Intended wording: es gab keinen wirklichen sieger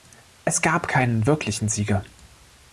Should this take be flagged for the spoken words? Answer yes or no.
no